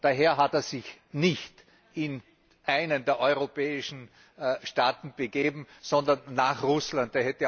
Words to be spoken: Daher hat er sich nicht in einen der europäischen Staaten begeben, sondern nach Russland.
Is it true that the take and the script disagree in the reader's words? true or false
false